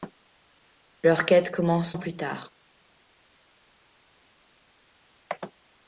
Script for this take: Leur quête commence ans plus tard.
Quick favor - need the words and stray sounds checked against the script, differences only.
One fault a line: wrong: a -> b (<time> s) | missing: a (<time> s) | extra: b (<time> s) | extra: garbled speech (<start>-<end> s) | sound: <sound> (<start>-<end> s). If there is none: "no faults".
no faults